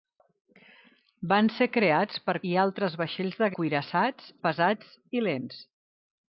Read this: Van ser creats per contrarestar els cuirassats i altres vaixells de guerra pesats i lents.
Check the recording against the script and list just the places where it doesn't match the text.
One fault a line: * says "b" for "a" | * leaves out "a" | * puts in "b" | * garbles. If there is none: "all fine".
* leaves out "contrarestar els cuirassats"
* says "cuirassats" for "guerra"